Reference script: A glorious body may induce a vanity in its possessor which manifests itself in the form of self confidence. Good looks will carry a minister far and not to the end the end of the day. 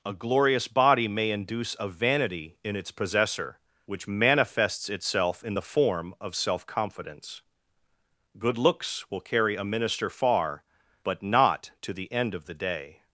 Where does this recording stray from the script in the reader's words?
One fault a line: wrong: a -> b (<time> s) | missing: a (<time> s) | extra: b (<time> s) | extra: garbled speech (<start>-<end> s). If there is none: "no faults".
wrong: and -> but (11.0 s)
missing: the end (12.3 s)